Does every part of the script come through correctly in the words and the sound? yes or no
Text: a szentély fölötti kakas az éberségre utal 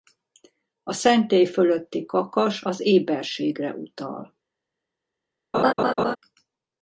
no